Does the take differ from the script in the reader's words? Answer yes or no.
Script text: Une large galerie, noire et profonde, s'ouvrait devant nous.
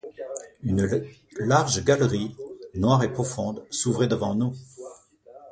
no